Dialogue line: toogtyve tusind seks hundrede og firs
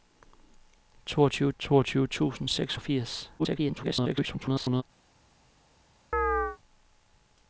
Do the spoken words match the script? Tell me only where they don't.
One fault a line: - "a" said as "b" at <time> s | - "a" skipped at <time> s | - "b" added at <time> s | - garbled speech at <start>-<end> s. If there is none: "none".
- "toogtyve" added at 1.6 s
- "hundrede" skipped at 2.8 s
- garbled speech at 3.4-4.8 s